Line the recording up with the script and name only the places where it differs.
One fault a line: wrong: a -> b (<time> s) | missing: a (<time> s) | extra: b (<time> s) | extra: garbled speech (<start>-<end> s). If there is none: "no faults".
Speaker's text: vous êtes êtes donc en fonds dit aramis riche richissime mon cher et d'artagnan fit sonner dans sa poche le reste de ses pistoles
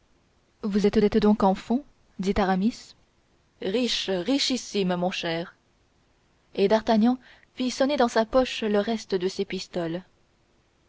no faults